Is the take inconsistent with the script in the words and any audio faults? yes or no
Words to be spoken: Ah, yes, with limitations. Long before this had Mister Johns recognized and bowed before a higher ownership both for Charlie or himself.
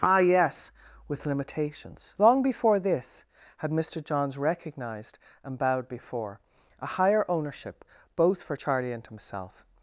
yes